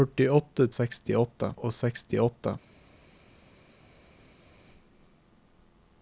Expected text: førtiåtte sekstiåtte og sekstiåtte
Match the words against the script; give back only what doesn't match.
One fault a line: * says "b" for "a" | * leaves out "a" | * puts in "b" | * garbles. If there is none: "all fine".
all fine